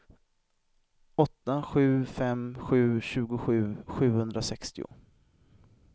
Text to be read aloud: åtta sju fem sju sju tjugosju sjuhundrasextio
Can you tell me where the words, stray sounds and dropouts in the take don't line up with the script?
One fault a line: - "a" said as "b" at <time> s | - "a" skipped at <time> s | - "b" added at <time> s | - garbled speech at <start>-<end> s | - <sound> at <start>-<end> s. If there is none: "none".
- "sju" skipped at 3.0 s